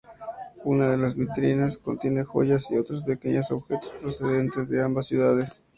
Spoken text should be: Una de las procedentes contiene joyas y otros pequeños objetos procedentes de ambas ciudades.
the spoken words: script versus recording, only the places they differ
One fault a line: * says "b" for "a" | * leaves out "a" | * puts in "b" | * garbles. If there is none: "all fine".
* says "vitrinas" for "procedentes"